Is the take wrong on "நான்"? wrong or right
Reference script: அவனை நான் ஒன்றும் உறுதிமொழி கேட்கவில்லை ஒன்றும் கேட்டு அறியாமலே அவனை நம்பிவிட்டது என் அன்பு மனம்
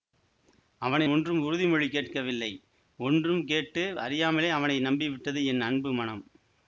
wrong